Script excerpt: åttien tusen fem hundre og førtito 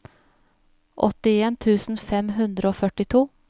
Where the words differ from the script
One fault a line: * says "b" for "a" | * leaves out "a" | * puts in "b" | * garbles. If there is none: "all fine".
all fine